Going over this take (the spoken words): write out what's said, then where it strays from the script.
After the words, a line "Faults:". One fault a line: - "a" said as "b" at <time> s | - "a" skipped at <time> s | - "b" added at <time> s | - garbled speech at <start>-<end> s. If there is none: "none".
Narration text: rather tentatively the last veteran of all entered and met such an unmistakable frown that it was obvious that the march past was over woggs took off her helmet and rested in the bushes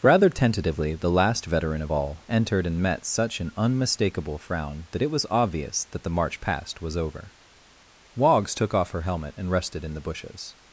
rather tentatively the last veteran of all entered and met such an unmistakable frown that it was obvious that the march past was over woggs took off her helmet and rested in the bushes
Faults:
none